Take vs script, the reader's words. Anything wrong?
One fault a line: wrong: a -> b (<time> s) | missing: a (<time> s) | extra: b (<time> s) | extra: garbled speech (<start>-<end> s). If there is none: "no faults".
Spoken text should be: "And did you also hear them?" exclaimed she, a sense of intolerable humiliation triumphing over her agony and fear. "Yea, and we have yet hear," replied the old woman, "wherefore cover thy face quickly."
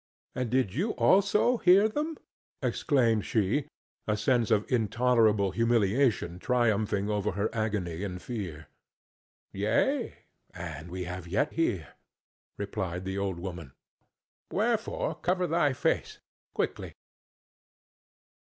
no faults